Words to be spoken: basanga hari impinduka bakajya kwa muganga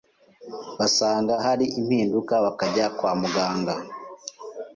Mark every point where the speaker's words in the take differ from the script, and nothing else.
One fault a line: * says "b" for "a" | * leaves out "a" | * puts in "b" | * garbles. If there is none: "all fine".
all fine